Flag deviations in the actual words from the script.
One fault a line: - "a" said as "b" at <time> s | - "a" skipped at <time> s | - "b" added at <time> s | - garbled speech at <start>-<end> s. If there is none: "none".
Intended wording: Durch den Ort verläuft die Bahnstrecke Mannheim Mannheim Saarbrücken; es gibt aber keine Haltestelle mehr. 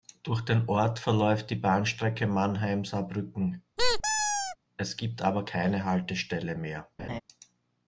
- "Mannheim" skipped at 2.9 s